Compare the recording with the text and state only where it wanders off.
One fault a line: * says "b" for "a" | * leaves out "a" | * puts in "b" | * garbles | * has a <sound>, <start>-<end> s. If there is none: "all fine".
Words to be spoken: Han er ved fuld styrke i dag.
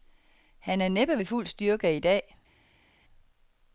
* puts in "næppe"